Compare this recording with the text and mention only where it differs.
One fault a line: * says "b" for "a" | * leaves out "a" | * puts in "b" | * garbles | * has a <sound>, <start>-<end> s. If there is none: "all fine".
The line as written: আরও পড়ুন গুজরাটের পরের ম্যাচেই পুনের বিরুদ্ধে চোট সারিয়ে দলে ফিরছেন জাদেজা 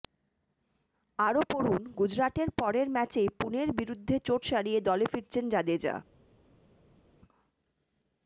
all fine